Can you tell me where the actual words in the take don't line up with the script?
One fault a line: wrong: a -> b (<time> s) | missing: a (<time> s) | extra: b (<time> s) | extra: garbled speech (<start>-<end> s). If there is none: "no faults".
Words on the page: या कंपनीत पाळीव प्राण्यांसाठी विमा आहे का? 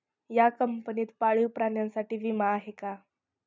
no faults